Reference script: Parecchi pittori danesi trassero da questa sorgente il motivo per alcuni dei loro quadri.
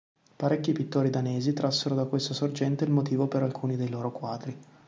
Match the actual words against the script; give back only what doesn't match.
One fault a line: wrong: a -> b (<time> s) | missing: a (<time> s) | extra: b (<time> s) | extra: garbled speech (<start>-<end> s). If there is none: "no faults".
no faults